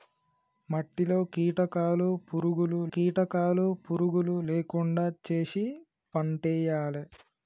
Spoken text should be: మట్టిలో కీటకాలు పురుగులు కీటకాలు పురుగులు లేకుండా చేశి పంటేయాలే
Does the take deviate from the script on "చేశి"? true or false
false